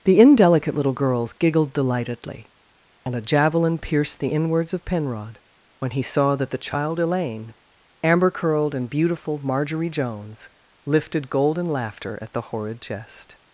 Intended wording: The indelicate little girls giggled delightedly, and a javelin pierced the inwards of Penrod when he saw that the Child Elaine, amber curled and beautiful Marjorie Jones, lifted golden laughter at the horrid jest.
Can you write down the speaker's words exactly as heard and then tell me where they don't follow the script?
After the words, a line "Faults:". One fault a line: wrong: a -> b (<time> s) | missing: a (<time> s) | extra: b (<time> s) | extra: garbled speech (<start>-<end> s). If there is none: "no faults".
The indelicate little girls giggled delightedly, and a javelin pierced the inwards of Penrod when he saw that the Child Elaine, amber curled and beautiful Marjorie Jones, lifted golden laughter at the horrid jest.
Faults:
no faults